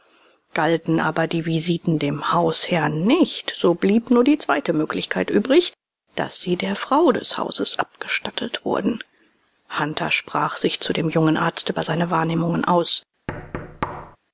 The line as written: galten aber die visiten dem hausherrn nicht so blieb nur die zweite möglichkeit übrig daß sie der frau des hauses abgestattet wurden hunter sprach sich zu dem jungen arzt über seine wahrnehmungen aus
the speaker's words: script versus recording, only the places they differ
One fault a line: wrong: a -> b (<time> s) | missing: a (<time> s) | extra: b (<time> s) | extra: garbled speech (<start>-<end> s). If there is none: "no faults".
no faults